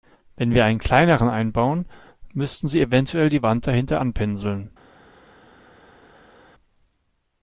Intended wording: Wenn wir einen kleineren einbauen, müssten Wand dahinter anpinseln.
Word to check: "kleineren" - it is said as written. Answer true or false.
true